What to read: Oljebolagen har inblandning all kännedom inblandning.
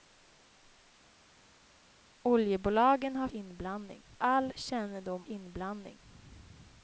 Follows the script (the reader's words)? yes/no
yes